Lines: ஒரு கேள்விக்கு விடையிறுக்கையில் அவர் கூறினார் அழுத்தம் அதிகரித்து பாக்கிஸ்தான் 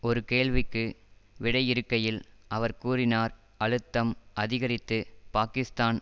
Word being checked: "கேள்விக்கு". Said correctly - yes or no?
yes